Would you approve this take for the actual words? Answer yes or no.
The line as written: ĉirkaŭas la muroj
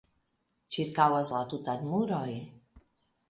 no